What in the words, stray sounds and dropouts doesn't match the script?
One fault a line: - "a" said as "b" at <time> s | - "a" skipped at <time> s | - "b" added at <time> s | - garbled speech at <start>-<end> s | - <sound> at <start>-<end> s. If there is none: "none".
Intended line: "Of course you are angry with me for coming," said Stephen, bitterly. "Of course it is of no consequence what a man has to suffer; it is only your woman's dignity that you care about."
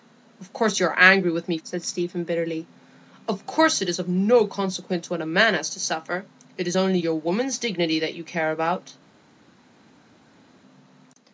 - "for coming" skipped at 1.6 s